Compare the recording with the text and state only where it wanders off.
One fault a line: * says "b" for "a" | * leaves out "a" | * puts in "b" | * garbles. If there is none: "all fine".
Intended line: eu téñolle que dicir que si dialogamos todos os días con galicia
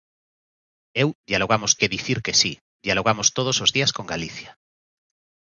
* says "dialogamos" for "téñolle"